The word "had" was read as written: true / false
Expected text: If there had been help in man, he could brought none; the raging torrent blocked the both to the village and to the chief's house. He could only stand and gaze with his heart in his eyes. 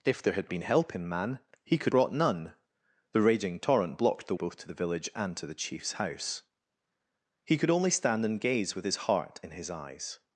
true